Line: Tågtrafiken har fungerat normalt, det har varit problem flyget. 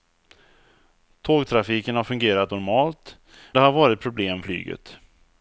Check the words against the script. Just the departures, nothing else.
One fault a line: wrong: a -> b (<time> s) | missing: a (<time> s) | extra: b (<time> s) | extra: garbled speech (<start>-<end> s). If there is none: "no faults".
no faults